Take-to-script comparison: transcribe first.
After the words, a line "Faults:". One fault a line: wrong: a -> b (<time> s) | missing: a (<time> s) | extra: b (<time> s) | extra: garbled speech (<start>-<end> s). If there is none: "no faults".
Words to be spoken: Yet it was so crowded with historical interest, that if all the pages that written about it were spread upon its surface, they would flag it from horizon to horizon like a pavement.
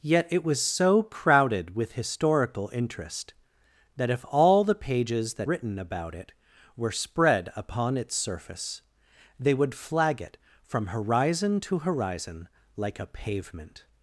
Yet it was so crowded with historical interest, that if all the pages that written about it were spread upon its surface, they would flag it from horizon to horizon like a pavement.
Faults:
no faults